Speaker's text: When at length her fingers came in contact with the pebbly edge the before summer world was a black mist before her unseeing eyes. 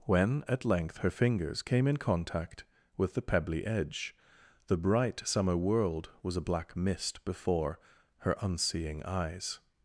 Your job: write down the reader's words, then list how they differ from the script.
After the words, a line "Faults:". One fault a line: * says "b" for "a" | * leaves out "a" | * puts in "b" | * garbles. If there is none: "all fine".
When at length her fingers came in contact with the pebbly edge the bright summer world was a black mist before her unseeing eyes.
Faults:
* says "bright" for "before"